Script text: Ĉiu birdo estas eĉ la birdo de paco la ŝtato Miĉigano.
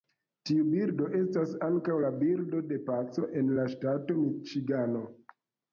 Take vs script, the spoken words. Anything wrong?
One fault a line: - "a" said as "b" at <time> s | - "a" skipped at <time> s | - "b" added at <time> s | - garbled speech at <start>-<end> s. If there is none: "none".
- "Ĉiu" said as "Tiu" at 0.5 s
- "eĉ" said as "ankaŭ" at 1.7 s
- "en" added at 3.4 s